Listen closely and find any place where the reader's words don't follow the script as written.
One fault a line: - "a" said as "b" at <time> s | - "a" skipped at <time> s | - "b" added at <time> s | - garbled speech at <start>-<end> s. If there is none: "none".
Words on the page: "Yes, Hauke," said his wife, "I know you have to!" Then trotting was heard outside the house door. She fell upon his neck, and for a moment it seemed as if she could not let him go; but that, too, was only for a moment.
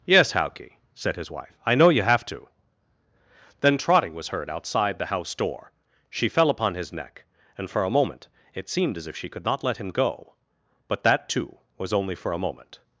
none